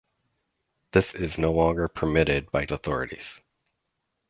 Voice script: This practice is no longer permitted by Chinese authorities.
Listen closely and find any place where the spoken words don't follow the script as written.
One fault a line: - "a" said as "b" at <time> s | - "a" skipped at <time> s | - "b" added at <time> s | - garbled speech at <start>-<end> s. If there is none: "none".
- "practice" skipped at 1.1 s
- "Chinese" skipped at 2.7 s